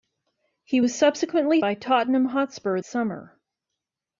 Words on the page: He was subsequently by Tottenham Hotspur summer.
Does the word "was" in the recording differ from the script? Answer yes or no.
no